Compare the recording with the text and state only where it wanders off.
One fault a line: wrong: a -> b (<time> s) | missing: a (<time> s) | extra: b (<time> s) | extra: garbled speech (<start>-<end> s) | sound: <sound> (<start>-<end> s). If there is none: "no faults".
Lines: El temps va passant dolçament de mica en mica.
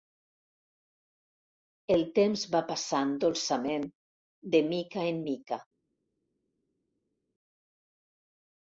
no faults